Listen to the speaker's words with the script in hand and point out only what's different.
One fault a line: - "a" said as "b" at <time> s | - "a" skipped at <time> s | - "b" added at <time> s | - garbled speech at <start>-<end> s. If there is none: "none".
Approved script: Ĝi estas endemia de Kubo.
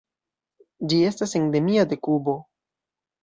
none